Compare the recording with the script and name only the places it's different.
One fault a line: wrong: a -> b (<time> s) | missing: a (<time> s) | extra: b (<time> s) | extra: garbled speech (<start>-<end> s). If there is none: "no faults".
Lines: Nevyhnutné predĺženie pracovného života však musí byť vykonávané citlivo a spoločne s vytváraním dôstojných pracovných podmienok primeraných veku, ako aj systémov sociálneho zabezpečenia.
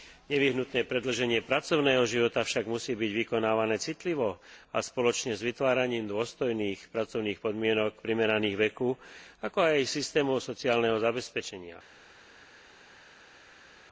no faults